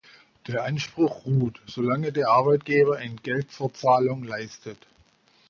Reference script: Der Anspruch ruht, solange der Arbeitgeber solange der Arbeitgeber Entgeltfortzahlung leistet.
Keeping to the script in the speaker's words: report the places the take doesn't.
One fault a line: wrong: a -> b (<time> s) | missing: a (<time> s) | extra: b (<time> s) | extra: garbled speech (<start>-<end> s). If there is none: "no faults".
missing: solange der Arbeitgeber (3.0 s)